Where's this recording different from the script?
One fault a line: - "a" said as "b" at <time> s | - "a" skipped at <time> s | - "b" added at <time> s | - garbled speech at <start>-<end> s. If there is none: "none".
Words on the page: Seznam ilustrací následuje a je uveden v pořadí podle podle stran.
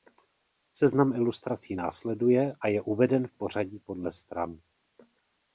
- "podle" skipped at 4.1 s